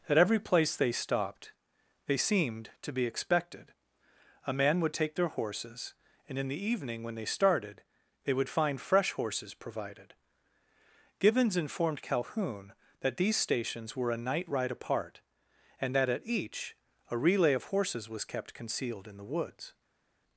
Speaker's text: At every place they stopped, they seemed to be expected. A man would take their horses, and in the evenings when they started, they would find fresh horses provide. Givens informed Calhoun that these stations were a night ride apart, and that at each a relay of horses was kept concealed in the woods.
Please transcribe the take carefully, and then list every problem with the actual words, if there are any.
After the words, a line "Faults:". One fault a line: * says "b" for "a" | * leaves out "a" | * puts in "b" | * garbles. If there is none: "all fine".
At every place they stopped, they seemed to be expected. A man would take their horses, and in the evening when they started, they would find fresh horses provided. Givens informed Calhoun that these stations were a night ride apart, and that at each a relay of horses was kept concealed in the woods.
Faults:
* says "evening" for "evenings"
* says "provided" for "provide"